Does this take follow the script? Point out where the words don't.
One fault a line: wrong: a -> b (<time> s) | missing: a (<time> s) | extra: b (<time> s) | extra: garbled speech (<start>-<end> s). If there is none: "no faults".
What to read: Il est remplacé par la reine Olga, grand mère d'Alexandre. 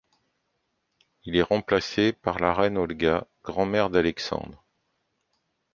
no faults